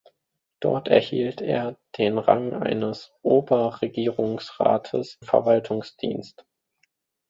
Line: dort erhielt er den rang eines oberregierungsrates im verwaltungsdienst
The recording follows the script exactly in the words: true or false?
false